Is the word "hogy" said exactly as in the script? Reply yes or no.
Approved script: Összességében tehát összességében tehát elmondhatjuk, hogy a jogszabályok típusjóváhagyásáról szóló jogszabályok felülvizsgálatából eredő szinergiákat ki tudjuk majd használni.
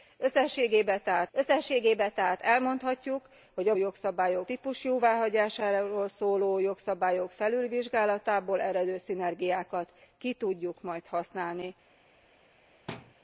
yes